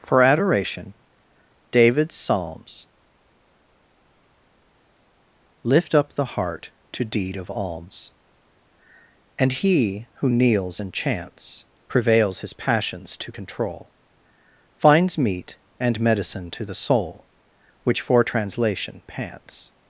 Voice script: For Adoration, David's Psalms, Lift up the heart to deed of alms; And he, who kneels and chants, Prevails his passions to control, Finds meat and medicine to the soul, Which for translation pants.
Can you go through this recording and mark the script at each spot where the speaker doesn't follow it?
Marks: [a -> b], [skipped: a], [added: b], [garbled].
For Adoration, David's Psalms, Lift up the heart to deed of alms; And he, who kneels and chants, Prevails his passions to control, Finds meat and medicine to the soul, Which for translation pants.